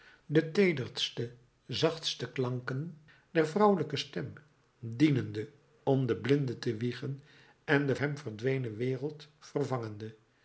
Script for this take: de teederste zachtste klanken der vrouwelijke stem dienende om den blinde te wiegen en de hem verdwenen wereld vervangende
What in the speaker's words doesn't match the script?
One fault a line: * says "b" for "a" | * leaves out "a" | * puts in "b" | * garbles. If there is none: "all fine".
all fine